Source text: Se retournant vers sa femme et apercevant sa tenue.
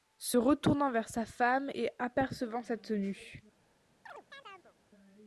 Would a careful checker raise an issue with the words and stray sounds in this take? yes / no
yes